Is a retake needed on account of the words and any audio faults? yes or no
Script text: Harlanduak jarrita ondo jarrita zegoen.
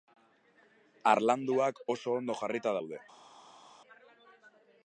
yes